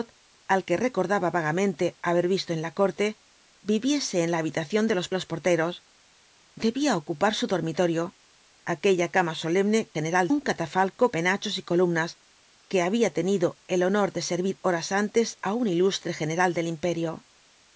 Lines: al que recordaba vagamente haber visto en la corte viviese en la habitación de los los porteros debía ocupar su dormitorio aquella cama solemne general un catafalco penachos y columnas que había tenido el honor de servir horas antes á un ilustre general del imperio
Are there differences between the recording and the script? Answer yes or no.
no